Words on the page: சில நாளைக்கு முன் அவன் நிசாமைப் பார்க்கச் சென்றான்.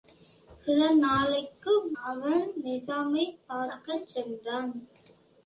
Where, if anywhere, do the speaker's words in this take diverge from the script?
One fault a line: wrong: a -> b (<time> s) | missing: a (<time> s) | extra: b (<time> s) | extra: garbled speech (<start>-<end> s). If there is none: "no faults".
missing: முன் (1.7 s)